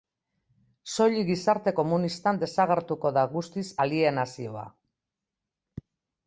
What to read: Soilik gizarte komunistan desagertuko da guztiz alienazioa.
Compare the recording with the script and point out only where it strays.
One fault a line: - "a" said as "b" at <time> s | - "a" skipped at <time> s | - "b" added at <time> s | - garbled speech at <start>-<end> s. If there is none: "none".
none